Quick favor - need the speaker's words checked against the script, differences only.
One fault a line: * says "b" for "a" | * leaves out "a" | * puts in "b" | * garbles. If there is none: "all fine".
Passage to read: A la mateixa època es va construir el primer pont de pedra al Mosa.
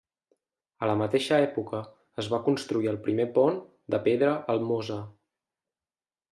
all fine